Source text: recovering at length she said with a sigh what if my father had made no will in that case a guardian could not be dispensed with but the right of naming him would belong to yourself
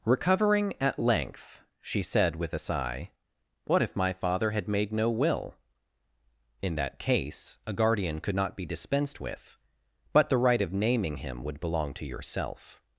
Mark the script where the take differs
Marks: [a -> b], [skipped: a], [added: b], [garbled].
recovering at length she said with a sigh what if my father had made no will in that case a guardian could not be dispensed with but the right of naming him would belong to yourself